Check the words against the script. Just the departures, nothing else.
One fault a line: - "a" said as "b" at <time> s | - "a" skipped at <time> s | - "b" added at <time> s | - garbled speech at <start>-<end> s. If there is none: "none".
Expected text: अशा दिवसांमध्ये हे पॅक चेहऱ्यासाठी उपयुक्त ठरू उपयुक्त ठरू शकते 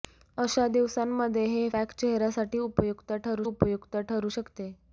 none